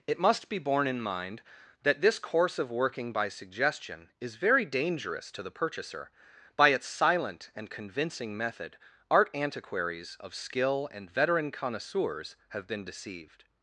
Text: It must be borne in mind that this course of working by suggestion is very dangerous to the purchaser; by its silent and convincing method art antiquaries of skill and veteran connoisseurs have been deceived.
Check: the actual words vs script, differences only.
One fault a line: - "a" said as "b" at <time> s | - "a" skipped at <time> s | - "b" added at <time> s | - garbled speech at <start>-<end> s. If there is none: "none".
none